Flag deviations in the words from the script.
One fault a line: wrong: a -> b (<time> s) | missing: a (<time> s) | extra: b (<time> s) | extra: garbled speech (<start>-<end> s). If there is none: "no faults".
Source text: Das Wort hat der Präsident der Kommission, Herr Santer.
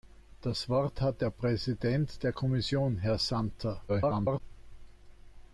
extra: garbled speech (3.9-4.4 s)